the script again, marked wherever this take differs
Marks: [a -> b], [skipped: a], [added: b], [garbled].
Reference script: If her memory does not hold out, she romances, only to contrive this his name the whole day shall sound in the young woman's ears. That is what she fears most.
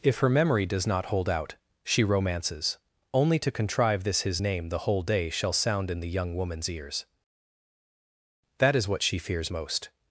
If her memory does not hold out, she romances, only to contrive this his name the whole day shall sound in the young woman's ears. That is what she fears most.